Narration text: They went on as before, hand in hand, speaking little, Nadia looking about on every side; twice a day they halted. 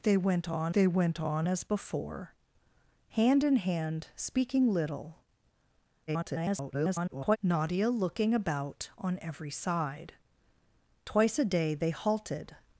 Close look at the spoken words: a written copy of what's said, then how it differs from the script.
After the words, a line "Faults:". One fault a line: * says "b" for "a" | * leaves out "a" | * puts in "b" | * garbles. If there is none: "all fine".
They went on they went on as before, hand in hand, speaking little, [garbled] Nadia looking about on every side; twice a day they halted.
Faults:
* puts in "they went on"
* garbles